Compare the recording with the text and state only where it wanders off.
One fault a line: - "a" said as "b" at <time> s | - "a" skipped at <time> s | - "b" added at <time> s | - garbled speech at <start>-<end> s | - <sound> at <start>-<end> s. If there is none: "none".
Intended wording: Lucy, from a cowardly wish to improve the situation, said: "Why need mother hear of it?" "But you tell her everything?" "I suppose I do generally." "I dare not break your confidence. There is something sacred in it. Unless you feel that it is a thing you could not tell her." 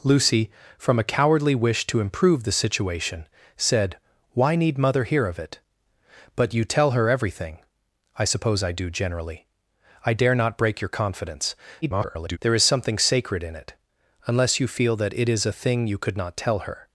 - garbled speech at 11.8-12.4 s